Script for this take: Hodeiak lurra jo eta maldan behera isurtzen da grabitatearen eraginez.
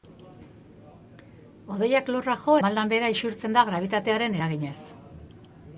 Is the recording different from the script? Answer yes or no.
yes